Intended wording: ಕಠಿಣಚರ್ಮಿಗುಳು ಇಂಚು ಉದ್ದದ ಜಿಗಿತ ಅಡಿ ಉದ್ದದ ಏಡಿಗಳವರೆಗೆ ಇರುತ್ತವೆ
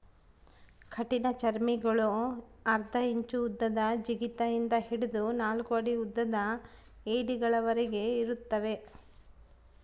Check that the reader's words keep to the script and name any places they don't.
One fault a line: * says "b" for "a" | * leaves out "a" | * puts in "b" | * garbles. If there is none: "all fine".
* puts in "ಅರ್ಧ"
* puts in "ಇಂದ ಹಿಡಿದು ನಾಲ್ಕು"